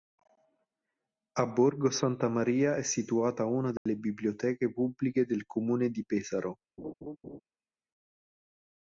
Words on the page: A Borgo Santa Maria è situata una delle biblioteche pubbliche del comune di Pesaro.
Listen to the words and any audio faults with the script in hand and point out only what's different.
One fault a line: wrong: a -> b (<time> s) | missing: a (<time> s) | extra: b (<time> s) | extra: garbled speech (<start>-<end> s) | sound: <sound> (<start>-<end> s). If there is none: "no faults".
sound: dropout (3.8-3.9 s)
sound: laugh (6.8-7.4 s)